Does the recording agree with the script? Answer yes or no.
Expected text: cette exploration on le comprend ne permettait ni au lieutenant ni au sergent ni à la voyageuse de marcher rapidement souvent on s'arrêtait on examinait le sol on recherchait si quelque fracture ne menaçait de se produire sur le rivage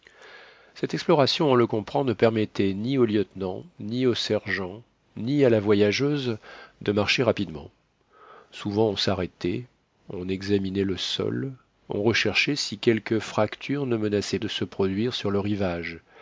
yes